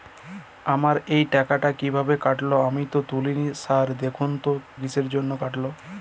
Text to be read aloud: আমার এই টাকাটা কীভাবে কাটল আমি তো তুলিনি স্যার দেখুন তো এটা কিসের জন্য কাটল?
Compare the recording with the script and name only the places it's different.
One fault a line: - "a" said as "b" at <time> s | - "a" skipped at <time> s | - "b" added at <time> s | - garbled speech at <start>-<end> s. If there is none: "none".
- "এটা" skipped at 4.5 s